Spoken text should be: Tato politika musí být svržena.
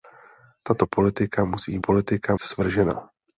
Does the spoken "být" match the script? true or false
false